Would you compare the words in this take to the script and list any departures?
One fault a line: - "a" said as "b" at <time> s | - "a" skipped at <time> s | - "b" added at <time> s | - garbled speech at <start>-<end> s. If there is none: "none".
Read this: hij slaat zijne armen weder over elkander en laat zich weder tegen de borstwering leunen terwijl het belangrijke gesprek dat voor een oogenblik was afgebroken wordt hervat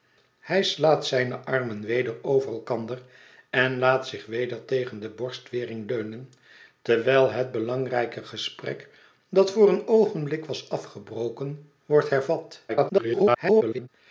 - garbled speech at 12.7-13.9 s